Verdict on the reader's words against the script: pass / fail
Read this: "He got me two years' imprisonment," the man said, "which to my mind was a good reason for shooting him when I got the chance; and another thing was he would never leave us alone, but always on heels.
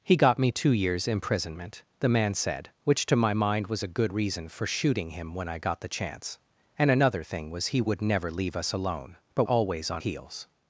pass